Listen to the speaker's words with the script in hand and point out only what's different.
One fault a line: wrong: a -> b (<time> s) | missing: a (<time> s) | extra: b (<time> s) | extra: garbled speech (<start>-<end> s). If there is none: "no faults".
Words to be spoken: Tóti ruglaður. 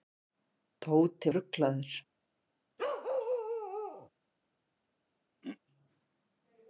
no faults